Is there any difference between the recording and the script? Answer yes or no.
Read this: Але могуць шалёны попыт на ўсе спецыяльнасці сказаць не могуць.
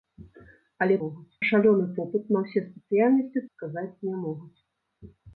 no